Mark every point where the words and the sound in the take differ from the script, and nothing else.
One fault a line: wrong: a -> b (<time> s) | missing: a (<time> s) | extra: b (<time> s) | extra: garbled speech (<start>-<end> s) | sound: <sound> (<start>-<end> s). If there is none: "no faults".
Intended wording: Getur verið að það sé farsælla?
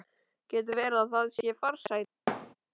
sound: thud (2.3-2.5 s)